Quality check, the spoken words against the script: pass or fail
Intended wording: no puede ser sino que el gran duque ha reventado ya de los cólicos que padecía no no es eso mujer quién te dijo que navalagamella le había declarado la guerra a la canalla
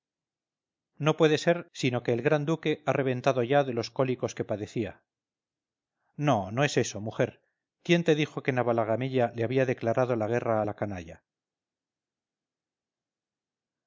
pass